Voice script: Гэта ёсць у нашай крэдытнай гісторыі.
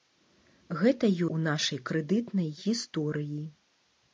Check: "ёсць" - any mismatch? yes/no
yes